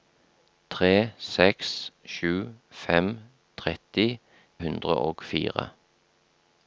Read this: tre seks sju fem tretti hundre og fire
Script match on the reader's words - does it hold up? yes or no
yes